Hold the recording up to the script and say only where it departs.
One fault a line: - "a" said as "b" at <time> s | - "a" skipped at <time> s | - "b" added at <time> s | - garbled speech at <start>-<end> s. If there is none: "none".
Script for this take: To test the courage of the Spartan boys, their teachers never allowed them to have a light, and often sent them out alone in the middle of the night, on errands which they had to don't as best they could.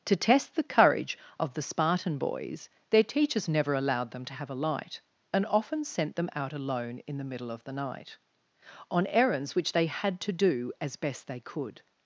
- "don't" said as "do" at 10.3 s